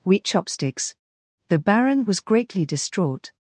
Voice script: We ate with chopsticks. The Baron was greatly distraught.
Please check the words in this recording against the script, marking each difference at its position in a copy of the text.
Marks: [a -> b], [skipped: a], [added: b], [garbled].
We [skipped: ate with] chopsticks. The Baron was greatly distraught.